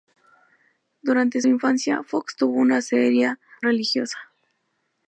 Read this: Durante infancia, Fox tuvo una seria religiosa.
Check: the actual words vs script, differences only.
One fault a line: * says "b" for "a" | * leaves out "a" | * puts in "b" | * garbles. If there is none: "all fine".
all fine